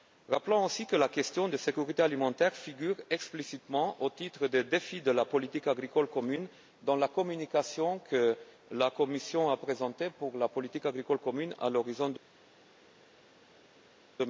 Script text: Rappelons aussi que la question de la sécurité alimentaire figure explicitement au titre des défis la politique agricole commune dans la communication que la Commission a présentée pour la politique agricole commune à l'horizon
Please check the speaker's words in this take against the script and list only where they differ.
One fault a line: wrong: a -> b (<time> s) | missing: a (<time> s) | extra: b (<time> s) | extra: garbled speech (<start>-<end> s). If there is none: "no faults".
extra: de (5.0 s)